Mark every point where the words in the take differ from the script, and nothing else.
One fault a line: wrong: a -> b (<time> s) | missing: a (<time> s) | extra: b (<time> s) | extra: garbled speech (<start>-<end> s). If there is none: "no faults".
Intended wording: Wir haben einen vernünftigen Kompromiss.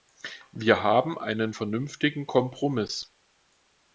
no faults